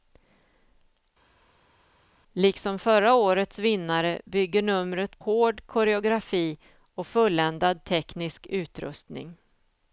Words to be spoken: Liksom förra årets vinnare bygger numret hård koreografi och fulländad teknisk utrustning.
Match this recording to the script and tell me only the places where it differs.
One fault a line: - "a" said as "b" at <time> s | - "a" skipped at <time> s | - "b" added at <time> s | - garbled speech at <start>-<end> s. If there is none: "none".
none